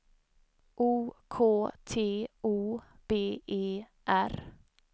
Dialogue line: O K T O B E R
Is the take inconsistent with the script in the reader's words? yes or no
no